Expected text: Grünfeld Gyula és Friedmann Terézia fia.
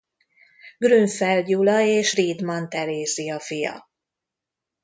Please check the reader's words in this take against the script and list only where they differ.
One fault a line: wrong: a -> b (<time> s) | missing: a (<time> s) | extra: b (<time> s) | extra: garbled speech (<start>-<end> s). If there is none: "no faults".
no faults